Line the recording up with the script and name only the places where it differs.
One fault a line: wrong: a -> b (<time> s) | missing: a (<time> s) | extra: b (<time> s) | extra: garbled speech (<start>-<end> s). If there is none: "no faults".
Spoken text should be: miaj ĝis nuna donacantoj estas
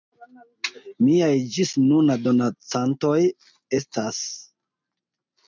no faults